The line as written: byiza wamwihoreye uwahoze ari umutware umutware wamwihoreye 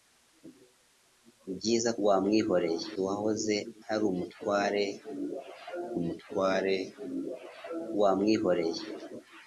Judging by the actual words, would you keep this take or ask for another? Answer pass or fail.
pass